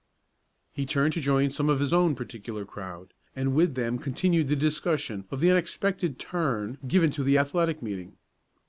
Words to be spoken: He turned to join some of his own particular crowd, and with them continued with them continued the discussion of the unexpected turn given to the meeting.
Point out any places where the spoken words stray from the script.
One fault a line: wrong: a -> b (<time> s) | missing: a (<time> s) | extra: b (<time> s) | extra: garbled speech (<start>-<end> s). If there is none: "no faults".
missing: with them continued (4.5 s)
extra: athletic (7.4 s)